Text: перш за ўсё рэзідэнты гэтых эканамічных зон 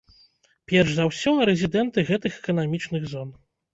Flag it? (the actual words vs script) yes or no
no